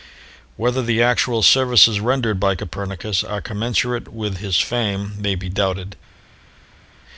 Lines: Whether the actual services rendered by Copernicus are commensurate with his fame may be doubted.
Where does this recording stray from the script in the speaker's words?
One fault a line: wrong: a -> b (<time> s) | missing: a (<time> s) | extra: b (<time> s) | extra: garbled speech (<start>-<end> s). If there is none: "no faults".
no faults